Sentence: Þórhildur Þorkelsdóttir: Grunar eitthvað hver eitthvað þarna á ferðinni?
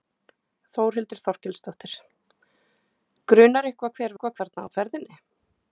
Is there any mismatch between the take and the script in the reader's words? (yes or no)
no